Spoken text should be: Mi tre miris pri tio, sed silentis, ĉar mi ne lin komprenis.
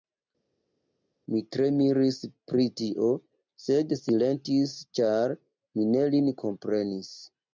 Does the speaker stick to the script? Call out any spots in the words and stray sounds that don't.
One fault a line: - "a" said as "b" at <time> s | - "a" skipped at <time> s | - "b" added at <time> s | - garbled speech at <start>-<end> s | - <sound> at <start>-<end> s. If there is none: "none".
none